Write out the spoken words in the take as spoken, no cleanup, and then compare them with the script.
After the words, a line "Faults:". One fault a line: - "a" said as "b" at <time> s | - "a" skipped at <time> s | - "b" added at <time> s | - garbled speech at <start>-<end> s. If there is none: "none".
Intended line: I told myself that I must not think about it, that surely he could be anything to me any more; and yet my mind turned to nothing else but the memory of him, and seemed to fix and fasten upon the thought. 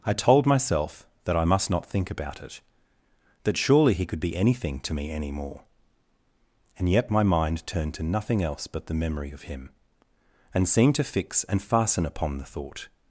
I told myself that I must not think about it, that surely he could be anything to me any more; and yet my mind turned to nothing else but the memory of him, and seemed to fix and fasten upon the thought.
Faults:
none